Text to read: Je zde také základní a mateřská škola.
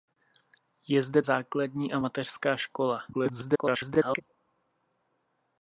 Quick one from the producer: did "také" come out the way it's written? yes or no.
no